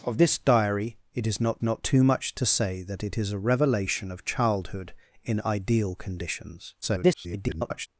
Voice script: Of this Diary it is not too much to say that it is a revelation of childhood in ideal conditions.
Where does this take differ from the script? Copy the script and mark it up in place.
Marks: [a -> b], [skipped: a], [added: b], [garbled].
Of this Diary it is not [added: not] too much to say that it is a revelation of childhood in ideal conditions. [garbled]